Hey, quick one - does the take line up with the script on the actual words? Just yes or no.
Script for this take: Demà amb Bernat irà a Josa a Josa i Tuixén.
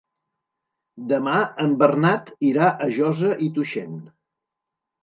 no